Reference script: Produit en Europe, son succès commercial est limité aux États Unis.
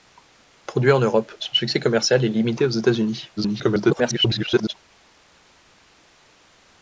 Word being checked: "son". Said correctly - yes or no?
yes